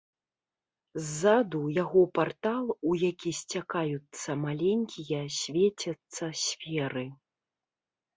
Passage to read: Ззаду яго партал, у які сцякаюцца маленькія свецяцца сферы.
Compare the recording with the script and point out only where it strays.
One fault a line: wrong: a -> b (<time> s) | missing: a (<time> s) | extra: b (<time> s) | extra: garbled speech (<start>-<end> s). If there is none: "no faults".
no faults